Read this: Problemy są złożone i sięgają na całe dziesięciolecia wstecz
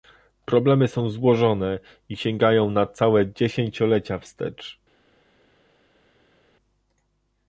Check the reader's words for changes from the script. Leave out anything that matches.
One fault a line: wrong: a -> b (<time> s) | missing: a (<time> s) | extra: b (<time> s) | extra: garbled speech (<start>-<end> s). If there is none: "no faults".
no faults